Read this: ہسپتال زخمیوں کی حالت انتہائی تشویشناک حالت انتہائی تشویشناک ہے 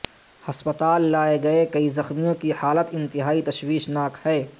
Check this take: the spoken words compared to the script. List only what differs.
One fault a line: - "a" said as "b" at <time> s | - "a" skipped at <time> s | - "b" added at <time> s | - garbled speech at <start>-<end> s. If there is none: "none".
- "زخمیوں کی حالت انتہائی تشویشناک" said as "لائے گئے کئی زخمیوں کی" at 1.1 s